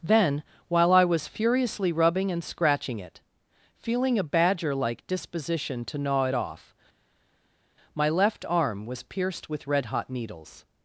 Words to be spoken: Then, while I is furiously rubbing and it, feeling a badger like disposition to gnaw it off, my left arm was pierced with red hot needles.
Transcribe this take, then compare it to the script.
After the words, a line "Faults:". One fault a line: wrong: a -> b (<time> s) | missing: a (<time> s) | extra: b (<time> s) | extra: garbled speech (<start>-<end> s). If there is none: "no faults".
Then, while I was furiously rubbing and scratching it, feeling a badger like disposition to gnaw it off, my left arm was pierced with red hot needles.
Faults:
wrong: is -> was (1.1 s)
extra: scratching (2.4 s)